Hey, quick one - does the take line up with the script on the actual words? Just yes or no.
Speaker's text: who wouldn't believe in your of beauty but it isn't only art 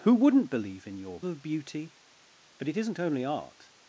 yes